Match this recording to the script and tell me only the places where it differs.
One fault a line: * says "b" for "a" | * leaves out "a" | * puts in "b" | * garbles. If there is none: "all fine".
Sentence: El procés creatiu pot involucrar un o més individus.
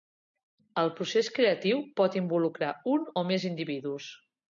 all fine